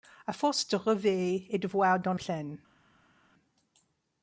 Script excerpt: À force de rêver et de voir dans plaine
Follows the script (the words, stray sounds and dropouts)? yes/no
yes